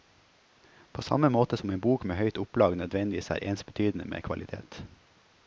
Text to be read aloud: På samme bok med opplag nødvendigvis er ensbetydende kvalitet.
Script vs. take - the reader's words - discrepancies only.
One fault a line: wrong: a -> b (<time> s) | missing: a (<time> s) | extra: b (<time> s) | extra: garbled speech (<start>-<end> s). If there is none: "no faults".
extra: måte som en (1.3 s)
extra: høyt (2.2 s)
extra: med (4.0 s)